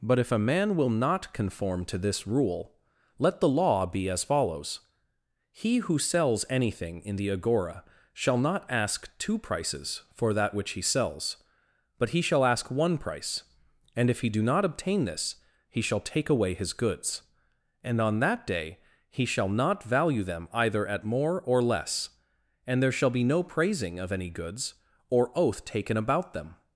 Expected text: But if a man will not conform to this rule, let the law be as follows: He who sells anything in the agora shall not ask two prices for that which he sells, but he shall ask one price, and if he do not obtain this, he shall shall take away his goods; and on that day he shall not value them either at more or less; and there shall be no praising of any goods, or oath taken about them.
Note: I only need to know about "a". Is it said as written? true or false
true